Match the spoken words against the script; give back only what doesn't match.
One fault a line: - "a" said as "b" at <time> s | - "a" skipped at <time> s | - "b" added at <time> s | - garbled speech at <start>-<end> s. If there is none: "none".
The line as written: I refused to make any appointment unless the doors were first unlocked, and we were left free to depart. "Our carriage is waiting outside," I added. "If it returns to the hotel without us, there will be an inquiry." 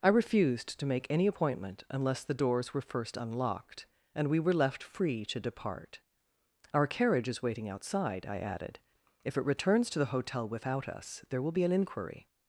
none